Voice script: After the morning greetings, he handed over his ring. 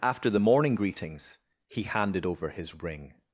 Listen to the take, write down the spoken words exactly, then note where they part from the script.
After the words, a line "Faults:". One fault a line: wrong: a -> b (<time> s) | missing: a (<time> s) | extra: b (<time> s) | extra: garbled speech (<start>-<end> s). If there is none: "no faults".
After the morning greetings, he handed over his ring.
Faults:
no faults